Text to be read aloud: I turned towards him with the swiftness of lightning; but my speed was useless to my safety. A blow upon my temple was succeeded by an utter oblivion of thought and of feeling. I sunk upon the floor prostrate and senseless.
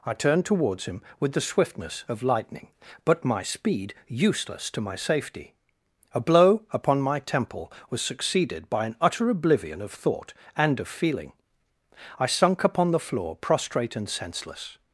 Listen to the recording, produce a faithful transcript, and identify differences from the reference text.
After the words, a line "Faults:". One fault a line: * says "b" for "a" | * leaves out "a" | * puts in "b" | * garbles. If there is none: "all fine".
I turned towards him with the swiftness of lightning; but my speed useless to my safety. A blow upon my temple was succeeded by an utter oblivion of thought and of feeling. I sunk upon the floor prostrate and senseless.
Faults:
* leaves out "was"